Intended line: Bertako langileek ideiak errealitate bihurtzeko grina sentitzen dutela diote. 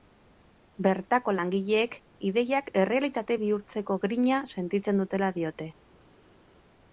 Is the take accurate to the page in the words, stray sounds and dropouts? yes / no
yes